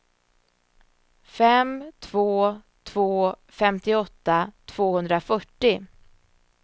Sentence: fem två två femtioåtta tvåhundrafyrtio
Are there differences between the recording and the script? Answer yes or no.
no